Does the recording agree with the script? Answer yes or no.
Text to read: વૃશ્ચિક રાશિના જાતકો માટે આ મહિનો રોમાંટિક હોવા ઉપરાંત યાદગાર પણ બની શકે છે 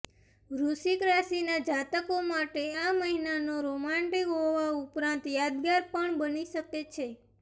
yes